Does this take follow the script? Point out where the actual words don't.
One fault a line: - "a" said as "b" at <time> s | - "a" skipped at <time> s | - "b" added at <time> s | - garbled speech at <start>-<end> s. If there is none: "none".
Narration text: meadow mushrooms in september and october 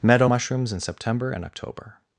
none